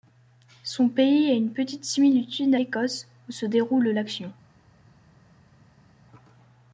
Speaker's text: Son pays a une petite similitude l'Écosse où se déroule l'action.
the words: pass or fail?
pass